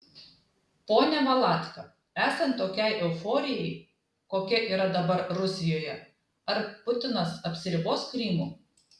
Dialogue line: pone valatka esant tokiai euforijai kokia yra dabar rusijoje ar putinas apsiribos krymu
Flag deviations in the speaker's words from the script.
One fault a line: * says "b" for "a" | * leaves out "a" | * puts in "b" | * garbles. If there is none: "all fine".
all fine